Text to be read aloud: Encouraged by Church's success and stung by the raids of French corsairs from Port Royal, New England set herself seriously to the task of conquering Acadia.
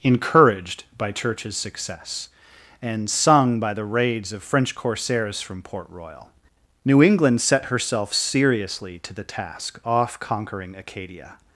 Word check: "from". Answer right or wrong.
right